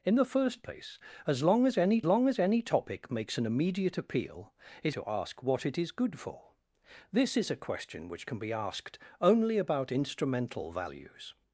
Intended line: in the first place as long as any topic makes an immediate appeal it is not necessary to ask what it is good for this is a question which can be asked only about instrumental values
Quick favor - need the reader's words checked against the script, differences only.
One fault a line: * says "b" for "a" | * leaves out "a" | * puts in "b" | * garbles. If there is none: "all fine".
* puts in "long as any"
* leaves out "is not necessary"